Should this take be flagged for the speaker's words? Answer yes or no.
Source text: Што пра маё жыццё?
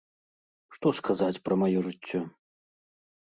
yes